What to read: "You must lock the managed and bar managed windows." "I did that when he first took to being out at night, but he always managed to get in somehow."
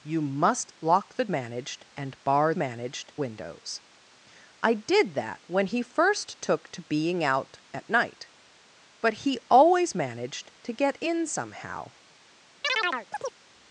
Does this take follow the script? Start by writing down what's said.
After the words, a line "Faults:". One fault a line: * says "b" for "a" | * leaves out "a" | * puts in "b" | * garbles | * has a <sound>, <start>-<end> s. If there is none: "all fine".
"You must lock the managed and bar managed windows." "I did that when he first took to being out at night, but he always managed to get in somehow."
Faults:
* has a chirp, 12.6-13.4 s